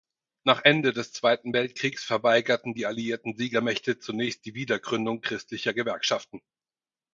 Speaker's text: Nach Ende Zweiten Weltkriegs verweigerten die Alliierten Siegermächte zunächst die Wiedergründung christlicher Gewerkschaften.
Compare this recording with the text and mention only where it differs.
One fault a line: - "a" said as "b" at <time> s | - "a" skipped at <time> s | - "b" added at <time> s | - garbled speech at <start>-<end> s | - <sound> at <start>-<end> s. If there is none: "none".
- "des" added at 0.9 s